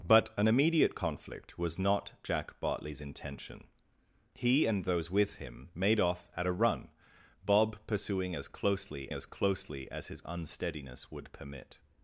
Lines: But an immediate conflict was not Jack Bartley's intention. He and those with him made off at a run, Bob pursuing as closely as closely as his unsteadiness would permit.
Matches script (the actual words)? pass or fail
pass